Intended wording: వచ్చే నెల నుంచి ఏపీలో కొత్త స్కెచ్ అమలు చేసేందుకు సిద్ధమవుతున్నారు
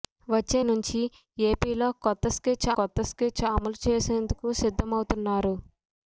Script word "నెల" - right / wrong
wrong